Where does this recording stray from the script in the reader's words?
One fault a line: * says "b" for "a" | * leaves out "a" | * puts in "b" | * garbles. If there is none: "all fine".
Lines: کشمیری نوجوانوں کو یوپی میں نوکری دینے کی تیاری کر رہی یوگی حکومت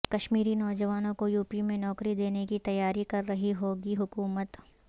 all fine